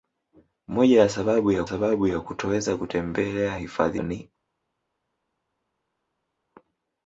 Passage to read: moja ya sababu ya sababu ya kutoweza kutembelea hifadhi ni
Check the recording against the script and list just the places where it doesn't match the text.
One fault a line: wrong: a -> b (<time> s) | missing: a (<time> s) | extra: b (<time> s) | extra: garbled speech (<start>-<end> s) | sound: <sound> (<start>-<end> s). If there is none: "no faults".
no faults